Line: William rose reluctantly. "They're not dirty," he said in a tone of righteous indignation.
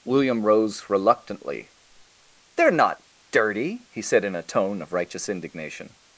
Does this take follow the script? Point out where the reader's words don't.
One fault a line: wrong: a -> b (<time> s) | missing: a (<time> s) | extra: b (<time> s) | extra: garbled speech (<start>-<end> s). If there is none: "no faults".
no faults